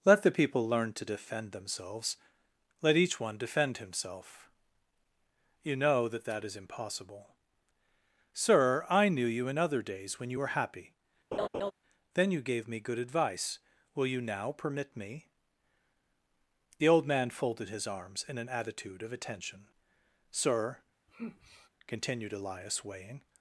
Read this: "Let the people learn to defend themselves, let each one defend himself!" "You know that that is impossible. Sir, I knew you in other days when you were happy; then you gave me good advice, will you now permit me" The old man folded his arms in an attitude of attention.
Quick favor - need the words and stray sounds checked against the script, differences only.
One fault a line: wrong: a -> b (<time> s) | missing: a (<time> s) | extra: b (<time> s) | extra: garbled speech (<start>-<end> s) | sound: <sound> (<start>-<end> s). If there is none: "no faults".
sound: laugh (11.3-11.7 s)
extra: Sir continued Elias weighing (20.3 s)
sound: sigh (21.1-21.7 s)